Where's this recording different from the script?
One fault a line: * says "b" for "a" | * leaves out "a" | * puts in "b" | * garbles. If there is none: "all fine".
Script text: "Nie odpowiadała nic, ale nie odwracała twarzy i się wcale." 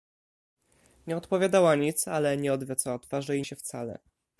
all fine